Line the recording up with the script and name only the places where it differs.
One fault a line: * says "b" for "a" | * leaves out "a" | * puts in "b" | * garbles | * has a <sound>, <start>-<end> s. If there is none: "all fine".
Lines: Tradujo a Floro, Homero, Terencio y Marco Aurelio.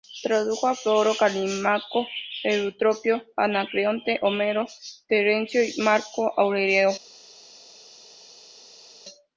* puts in "Calímaco Eutropio Anacreonte"